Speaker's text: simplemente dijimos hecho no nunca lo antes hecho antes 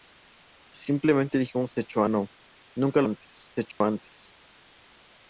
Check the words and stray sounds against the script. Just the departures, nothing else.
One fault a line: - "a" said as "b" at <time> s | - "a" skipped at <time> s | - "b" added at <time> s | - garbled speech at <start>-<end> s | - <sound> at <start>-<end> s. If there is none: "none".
- dropout at 3.7-3.8 s